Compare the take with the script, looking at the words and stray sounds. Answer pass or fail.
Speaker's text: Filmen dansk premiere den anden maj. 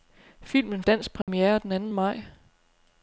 fail